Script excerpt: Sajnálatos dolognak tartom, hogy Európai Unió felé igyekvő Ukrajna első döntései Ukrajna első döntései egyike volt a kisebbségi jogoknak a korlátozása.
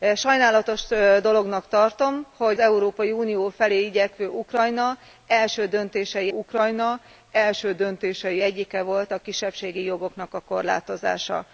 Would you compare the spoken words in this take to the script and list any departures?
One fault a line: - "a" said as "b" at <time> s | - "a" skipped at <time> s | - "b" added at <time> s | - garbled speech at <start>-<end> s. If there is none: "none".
none